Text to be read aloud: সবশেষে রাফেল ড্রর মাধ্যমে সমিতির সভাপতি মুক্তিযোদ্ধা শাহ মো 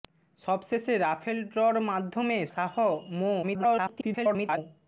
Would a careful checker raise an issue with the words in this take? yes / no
yes